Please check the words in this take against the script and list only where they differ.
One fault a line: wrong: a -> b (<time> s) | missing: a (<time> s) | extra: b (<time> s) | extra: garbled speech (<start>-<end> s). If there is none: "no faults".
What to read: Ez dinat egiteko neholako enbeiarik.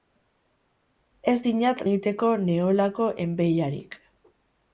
no faults